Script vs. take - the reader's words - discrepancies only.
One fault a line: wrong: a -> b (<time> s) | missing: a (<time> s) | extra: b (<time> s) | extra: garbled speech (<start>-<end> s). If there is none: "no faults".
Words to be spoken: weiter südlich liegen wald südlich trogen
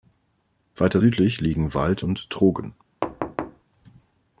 wrong: südlich -> und (2.0 s)